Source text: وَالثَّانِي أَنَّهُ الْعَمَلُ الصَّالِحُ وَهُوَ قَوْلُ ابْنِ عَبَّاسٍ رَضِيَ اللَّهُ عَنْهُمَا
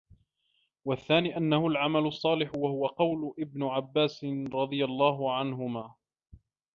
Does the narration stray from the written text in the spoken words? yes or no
no